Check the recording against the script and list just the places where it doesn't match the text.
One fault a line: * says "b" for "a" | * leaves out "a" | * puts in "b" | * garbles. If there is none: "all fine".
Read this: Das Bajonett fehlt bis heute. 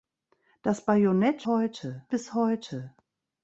* says "heute" for "fehlt"